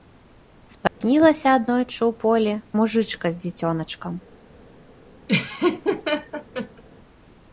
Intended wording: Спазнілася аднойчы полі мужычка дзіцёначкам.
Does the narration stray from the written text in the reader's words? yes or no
yes